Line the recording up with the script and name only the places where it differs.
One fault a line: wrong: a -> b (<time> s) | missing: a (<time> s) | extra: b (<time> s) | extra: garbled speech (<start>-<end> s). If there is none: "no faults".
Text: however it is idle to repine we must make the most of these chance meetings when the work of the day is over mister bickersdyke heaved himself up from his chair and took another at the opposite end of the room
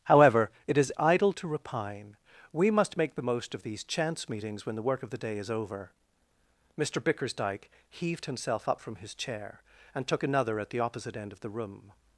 no faults